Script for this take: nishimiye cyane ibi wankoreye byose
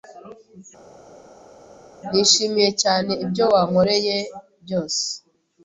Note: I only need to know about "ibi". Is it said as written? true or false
false